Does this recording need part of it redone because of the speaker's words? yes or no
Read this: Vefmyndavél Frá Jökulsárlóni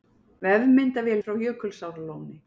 no